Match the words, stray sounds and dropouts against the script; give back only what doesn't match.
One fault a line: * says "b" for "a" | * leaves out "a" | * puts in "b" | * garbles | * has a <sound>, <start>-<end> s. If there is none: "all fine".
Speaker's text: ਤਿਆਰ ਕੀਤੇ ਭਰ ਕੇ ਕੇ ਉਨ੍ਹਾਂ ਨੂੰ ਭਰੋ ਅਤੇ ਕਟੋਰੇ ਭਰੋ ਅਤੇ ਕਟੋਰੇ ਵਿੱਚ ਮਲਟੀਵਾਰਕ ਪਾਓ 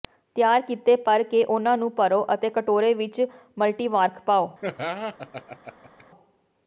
* leaves out "ਕੇ"
* leaves out "ਭਰੋ ਅਤੇ ਕਟੋਰੇ"
* has a laugh, 4.6-6.0 s